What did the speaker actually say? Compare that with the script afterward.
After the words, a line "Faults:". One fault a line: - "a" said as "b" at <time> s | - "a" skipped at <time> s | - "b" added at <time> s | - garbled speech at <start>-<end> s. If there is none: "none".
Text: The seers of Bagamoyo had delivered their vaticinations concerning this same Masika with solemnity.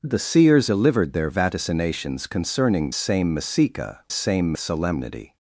The seers delivered their vaticinations concerning same Masika same solemnity.
Faults:
- "of Bagamoyo had" skipped at 0.7 s
- "this" skipped at 2.9 s
- "with" said as "same" at 4.1 s